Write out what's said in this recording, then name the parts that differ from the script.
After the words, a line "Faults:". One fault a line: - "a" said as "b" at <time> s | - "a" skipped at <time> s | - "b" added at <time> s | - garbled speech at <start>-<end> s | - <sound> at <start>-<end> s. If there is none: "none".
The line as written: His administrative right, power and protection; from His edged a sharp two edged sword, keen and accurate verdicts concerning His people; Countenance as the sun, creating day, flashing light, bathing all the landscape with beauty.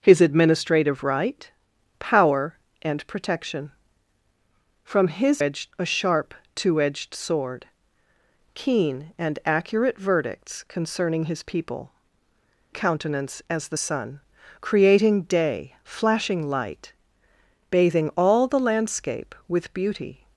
His administrative right, power and protection; from His edged a sharp two edged sword, keen and accurate verdicts concerning His people; Countenance as the sun, creating day, flashing light, bathing all the landscape with beauty.
Faults:
none